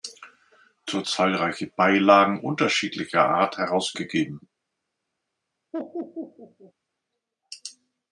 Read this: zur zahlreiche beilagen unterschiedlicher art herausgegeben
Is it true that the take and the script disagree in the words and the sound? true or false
true